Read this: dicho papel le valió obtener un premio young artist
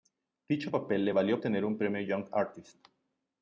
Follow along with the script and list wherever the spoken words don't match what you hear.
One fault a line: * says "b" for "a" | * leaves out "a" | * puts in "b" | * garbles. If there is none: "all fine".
all fine